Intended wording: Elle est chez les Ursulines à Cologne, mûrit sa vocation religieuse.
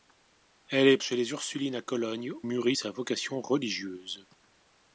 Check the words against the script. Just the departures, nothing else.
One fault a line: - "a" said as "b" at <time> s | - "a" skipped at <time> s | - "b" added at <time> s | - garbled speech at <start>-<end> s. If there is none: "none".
none